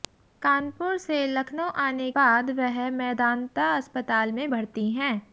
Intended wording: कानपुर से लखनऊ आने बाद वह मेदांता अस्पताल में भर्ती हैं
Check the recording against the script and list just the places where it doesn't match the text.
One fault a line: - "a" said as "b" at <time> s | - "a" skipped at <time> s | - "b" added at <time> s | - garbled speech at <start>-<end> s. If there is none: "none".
none